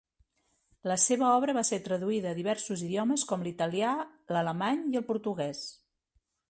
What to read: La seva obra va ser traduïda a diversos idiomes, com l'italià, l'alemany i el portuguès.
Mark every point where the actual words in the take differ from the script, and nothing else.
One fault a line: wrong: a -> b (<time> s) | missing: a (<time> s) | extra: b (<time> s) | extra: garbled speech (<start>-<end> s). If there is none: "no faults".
no faults